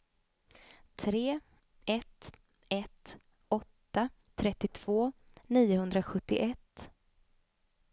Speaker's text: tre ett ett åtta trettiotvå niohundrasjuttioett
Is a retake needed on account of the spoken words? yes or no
no